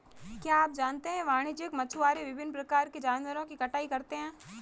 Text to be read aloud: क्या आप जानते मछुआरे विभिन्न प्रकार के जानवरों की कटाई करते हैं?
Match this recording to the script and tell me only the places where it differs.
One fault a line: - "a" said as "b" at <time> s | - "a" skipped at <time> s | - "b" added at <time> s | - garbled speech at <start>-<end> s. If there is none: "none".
- "है वाणिज्यिक" added at 1.1 s